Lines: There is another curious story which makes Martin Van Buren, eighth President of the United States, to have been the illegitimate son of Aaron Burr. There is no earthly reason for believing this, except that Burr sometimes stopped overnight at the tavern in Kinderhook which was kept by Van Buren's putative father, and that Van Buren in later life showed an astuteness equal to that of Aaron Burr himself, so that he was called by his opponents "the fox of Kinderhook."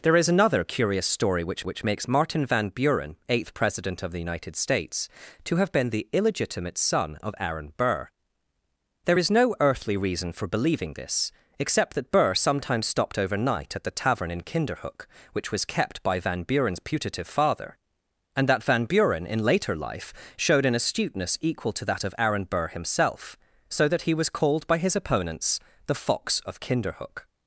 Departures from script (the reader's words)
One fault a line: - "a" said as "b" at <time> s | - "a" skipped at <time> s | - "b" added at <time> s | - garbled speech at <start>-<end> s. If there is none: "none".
- "which" added at 1.6 s